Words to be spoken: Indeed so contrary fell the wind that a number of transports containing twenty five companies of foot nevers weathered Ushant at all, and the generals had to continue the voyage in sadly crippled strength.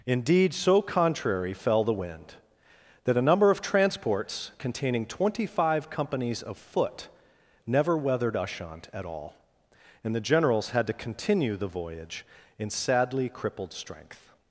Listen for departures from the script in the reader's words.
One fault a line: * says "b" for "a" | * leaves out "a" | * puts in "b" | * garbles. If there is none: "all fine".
* says "never" for "nevers"